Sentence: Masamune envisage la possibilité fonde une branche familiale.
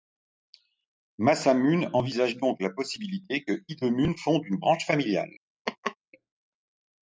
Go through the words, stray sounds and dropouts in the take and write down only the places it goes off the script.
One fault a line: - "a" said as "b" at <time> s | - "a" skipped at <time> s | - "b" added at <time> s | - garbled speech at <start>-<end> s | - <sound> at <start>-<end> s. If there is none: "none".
- "donc" added at 2.4 s
- "que Hidemune" added at 3.4 s
- laugh at 5.7-6.0 s